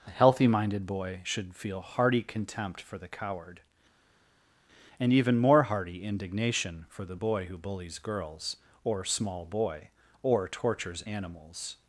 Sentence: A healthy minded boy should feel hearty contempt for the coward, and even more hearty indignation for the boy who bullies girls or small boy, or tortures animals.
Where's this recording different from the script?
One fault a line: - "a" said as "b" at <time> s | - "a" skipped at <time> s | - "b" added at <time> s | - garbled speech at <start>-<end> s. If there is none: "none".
none